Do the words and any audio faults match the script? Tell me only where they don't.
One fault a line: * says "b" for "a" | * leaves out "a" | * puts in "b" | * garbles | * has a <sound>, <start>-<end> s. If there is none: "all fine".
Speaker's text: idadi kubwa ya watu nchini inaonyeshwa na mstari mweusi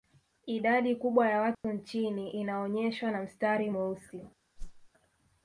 * has a dropout, 1.5-1.6 s
* has a whoosh, 4.6-4.9 s